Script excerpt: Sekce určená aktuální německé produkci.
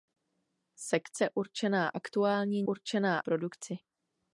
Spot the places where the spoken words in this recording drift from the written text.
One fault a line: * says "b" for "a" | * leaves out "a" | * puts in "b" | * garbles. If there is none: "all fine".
* says "určená" for "německé"